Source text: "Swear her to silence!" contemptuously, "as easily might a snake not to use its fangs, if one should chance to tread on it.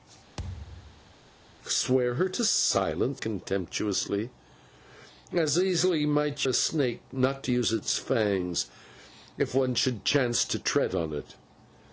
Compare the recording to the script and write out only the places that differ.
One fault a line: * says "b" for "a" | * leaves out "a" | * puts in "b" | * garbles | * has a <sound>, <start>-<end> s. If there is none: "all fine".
* has a thud, 0.4-1.1 s